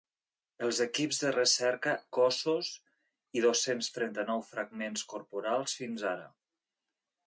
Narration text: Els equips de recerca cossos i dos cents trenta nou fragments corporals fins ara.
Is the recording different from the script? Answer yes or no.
no